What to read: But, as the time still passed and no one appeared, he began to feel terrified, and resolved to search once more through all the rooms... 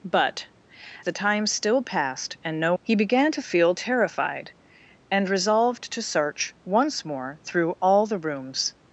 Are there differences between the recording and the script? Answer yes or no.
yes